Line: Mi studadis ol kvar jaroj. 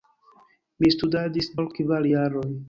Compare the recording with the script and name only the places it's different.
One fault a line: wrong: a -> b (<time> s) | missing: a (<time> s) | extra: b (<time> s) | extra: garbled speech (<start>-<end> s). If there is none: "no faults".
no faults